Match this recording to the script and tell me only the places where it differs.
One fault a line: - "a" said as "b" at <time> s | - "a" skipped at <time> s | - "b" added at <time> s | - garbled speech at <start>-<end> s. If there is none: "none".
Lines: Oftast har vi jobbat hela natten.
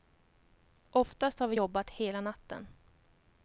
none